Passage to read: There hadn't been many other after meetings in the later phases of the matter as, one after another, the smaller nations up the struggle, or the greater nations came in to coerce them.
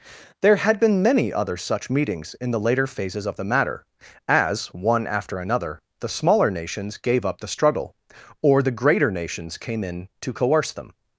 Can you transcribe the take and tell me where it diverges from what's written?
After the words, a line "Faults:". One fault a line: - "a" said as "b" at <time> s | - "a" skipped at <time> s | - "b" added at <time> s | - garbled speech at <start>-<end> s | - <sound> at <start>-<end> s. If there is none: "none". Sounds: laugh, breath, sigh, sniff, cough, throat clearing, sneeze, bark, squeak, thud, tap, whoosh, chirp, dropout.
There had been many other such meetings in the later phases of the matter as, one after another, the smaller nations gave up the struggle, or the greater nations came in to coerce them.
Faults:
- "hadn't" said as "had" at 0.6 s
- "after" said as "such" at 1.6 s
- "gave" added at 7.0 s